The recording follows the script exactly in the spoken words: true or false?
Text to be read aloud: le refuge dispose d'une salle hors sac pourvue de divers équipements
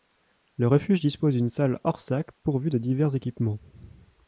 true